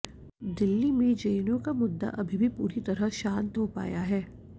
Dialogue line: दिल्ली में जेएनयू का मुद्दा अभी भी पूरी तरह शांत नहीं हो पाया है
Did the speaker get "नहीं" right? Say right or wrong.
wrong